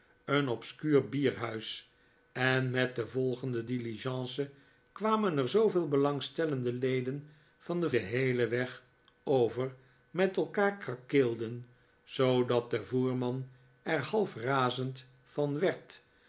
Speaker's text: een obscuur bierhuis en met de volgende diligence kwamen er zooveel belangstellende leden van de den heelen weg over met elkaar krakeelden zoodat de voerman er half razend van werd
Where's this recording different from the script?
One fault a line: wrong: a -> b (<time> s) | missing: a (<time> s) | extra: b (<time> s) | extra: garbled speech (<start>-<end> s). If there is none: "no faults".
no faults